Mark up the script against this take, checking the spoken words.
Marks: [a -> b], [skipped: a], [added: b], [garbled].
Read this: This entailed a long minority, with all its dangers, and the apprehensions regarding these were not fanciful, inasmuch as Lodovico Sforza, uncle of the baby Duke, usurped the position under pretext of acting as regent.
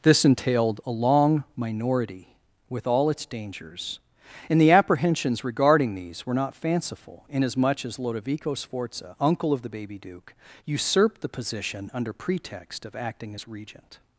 This entailed a long minority, with all its dangers, and the apprehensions regarding these were not fanciful, inasmuch as Lodovico Sforza, uncle of the baby Duke, usurped the position under pretext of acting as regent.